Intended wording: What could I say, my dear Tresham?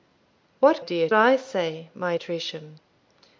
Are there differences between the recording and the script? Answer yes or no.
yes